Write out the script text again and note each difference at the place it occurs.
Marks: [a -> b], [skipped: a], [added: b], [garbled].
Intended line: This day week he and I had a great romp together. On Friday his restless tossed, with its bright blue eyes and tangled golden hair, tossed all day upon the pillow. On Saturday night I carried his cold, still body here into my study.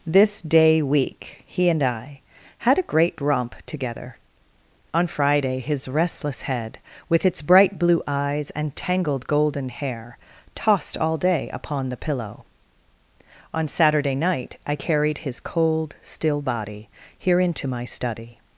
This day week he and I had a great romp together. On Friday his restless [tossed, -> head] with its bright blue eyes and tangled golden hair, tossed all day upon the pillow. On Saturday night I carried his cold, still body here into my study.